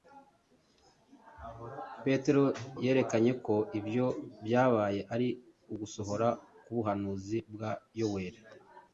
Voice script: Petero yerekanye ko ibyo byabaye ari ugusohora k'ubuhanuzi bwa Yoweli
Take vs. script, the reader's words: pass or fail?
pass